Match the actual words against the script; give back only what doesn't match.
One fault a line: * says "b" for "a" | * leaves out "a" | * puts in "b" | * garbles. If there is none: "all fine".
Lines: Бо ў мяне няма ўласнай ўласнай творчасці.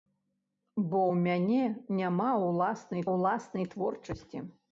all fine